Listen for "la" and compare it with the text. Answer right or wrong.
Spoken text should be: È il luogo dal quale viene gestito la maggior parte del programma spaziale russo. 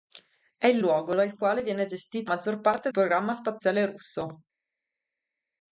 wrong